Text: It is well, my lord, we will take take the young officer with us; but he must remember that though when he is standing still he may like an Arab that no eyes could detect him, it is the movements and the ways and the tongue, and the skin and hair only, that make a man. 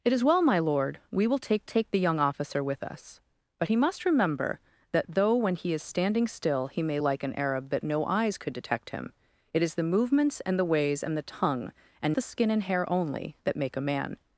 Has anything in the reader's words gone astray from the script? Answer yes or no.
no